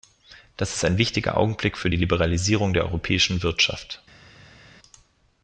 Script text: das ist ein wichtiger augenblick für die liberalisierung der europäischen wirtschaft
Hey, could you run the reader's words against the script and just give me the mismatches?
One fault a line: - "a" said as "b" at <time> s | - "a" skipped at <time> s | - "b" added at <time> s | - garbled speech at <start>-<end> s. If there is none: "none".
none